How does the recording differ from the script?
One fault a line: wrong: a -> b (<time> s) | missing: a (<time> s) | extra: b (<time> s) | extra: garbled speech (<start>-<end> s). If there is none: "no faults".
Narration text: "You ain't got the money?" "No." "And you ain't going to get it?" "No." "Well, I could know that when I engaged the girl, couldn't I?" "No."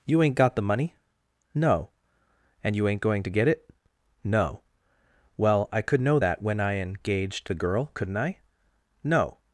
no faults